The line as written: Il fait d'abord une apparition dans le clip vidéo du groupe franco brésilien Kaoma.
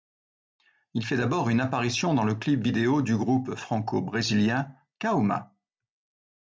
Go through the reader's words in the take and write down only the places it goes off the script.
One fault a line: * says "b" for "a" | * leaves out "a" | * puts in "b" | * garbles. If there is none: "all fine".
all fine